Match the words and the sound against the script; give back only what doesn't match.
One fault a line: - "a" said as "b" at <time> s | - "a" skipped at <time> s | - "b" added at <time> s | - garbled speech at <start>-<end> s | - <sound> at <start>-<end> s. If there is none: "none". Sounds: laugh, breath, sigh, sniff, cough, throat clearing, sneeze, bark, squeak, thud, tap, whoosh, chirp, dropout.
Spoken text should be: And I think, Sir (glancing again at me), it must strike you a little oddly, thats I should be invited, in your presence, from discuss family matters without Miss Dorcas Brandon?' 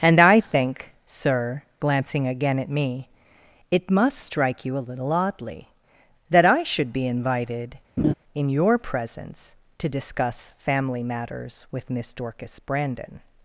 - "thats" said as "that" at 6.3 s
- laugh at 8.0-8.1 s
- "from" said as "to" at 9.8 s
- "without" said as "with" at 11.7 s